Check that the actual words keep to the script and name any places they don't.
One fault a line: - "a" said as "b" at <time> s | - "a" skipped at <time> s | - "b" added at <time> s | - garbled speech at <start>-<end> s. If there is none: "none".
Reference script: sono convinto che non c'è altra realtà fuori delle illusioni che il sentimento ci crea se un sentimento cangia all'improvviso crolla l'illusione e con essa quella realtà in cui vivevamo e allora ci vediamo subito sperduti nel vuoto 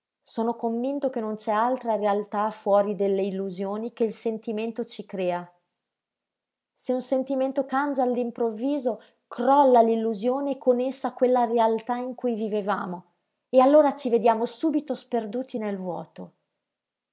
none